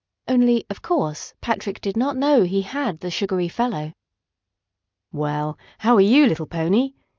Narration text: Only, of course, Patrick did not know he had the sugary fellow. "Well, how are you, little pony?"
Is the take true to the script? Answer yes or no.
yes